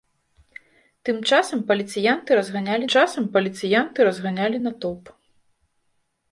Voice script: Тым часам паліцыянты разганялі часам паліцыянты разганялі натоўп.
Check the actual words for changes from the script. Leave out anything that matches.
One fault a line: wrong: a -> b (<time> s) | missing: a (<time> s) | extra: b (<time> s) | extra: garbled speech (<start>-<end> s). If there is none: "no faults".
no faults